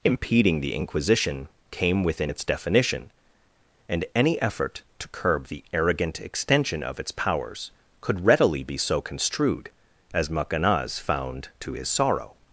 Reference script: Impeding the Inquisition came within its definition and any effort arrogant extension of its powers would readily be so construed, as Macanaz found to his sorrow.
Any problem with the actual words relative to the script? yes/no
yes